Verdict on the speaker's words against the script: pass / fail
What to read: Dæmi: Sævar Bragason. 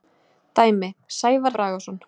pass